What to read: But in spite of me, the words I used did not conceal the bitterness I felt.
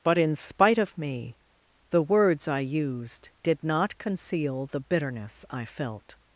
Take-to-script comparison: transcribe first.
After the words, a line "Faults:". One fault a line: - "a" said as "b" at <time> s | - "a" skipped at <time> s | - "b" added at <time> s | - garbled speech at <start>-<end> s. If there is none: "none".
But in spite of me, the words I used did not conceal the bitterness I felt.
Faults:
none